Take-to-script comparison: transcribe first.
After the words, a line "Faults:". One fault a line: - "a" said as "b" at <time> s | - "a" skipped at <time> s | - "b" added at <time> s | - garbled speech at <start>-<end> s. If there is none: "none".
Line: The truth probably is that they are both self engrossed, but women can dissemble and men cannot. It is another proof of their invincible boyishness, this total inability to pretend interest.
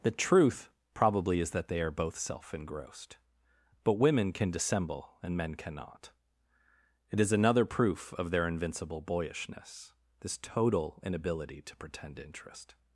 The truth probably is that they are both self engrossed, but women can dissemble and men cannot. It is another proof of their invincible boyishness, this total inability to pretend interest.
Faults:
none